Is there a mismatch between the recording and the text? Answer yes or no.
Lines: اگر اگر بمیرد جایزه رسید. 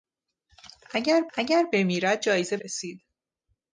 no